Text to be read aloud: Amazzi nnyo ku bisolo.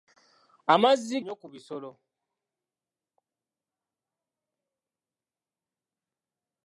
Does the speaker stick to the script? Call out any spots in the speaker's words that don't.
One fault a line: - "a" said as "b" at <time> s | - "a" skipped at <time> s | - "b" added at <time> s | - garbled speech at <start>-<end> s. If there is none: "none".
none